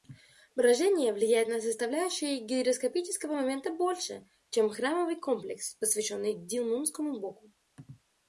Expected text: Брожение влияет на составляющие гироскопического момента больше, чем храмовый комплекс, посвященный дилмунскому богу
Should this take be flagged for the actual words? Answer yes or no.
no